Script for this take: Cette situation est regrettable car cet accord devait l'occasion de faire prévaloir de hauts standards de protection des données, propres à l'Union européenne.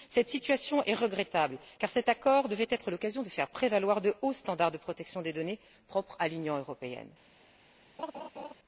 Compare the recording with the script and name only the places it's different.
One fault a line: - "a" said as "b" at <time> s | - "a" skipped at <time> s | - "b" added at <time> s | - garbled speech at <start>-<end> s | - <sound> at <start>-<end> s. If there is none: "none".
- "être" added at 2.7 s
- laugh at 8.0-8.5 s